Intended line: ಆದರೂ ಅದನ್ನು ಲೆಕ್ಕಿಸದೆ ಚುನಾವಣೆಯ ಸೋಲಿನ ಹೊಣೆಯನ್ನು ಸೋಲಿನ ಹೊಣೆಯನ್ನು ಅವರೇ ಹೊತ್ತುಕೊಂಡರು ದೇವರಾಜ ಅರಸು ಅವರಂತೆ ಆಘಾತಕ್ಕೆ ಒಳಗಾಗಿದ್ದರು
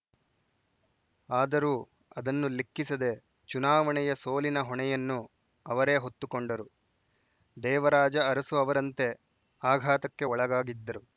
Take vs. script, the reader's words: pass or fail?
fail